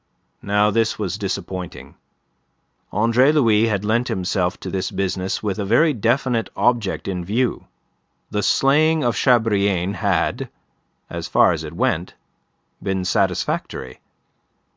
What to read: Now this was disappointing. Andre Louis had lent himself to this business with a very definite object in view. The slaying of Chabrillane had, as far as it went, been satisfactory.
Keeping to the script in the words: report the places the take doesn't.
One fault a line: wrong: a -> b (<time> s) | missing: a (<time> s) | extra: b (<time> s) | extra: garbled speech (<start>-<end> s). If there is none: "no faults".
no faults